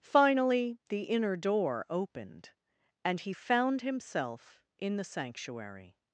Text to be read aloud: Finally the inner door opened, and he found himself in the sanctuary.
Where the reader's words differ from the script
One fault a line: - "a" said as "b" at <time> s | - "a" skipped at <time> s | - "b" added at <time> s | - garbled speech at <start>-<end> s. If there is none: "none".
none